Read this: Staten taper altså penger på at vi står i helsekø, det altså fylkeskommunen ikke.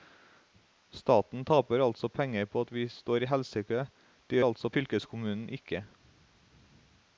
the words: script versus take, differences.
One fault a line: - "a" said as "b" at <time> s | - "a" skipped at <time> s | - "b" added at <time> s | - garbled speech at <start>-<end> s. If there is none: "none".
none